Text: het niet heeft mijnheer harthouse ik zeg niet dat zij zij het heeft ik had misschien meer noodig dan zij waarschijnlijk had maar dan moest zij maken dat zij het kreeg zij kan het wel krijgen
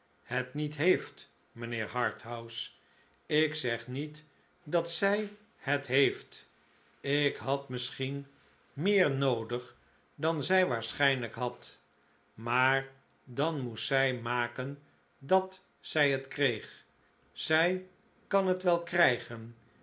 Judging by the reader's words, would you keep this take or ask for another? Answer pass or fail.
fail